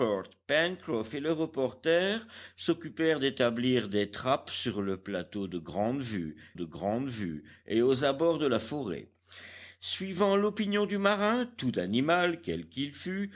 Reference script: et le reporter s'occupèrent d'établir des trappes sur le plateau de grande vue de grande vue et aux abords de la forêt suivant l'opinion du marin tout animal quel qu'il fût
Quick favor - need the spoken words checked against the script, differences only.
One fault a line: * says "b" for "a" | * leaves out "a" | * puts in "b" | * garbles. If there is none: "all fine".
all fine